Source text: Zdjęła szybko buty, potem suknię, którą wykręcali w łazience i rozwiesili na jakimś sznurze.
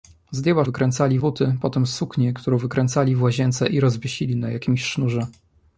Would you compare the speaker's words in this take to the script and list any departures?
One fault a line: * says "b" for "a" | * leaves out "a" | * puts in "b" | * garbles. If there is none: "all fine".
* says "wykręcali" for "szybko"